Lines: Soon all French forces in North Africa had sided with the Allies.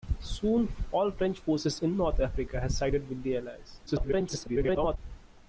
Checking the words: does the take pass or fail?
fail